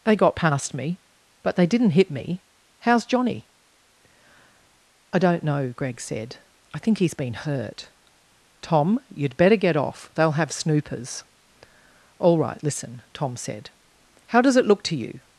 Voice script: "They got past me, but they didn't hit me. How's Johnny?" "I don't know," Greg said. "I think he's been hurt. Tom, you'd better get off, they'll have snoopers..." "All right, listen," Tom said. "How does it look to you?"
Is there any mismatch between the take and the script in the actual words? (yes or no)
no